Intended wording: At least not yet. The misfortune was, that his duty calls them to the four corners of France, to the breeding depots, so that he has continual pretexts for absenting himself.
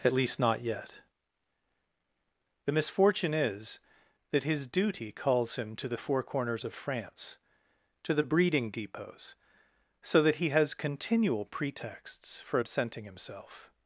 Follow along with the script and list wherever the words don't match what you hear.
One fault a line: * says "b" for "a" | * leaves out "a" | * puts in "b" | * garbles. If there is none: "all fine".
* says "is" for "was"
* says "him" for "them"